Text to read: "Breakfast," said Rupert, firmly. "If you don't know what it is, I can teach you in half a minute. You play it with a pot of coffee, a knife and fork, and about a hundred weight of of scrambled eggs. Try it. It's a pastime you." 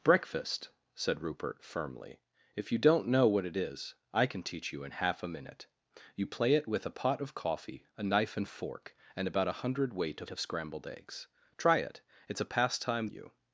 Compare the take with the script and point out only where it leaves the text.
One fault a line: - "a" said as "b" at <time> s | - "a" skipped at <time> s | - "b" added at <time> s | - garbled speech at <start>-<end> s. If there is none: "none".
none